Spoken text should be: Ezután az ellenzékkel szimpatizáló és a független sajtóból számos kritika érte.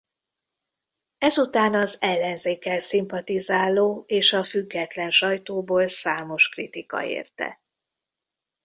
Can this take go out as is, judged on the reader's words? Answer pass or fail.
pass